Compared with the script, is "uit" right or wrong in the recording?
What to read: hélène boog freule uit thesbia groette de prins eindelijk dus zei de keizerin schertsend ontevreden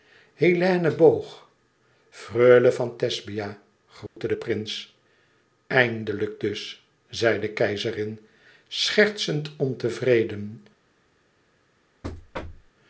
wrong